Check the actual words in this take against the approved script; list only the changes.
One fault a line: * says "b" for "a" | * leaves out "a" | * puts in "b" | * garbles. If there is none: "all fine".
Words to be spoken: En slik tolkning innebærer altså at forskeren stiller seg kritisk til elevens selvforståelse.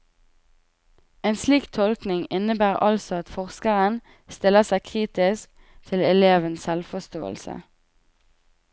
all fine